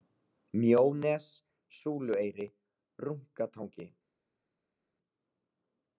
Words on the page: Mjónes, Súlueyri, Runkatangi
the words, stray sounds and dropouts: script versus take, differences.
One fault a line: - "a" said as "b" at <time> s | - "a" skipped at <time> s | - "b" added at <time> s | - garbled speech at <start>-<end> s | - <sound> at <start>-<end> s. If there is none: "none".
none